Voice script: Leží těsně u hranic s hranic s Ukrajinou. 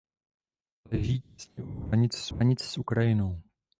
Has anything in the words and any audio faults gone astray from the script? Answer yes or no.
no